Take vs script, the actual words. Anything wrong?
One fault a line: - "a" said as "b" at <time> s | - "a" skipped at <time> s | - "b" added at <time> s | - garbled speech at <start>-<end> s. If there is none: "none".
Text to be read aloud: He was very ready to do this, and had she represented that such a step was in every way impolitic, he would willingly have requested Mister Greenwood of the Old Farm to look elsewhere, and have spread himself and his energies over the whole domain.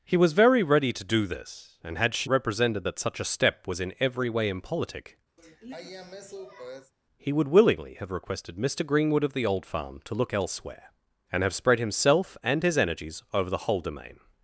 none